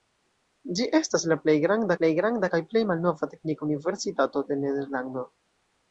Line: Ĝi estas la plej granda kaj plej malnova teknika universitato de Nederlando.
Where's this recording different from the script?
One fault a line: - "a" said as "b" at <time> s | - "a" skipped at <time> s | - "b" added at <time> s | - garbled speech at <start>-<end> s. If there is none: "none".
- "plej granda" added at 2.0 s